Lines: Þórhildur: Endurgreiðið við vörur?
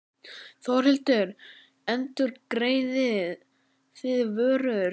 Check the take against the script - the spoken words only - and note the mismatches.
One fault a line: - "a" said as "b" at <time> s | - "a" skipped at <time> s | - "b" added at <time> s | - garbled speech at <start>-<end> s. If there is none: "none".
- "við" said as "þið" at 4.0 s